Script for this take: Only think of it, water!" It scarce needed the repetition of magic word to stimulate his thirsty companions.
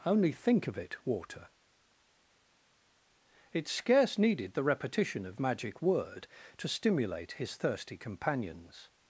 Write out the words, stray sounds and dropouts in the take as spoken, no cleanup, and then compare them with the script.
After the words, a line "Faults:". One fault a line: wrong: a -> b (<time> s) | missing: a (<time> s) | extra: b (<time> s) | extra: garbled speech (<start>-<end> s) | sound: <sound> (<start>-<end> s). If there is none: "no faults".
Only think of it, water!" It scarce needed the repetition of magic word to stimulate his thirsty companions.
Faults:
no faults